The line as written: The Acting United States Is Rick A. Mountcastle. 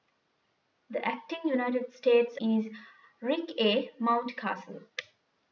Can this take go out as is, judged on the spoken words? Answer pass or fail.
pass